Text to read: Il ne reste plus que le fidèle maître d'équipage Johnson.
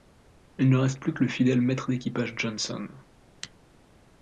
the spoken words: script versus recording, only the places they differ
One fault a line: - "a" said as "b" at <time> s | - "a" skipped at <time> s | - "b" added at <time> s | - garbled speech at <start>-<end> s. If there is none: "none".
none